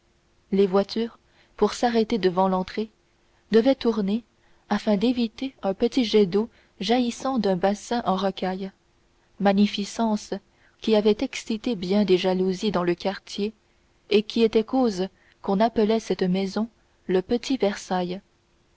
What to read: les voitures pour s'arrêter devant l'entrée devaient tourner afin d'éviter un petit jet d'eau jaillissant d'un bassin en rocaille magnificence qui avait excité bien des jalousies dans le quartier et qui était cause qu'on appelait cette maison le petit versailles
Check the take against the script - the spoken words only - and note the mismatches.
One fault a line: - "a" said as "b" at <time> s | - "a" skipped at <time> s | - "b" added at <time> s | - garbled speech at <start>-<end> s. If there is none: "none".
none